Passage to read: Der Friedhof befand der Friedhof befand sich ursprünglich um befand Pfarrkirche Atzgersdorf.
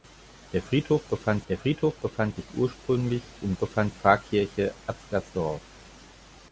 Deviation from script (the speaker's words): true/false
false